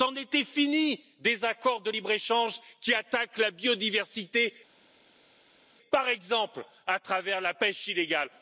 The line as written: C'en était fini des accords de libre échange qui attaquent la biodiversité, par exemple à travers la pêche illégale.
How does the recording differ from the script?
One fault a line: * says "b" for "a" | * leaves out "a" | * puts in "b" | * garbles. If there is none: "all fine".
all fine